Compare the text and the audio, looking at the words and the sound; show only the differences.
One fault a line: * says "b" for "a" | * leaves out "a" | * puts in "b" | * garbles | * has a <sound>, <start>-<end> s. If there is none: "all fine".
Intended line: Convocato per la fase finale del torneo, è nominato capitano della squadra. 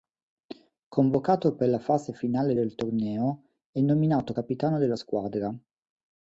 all fine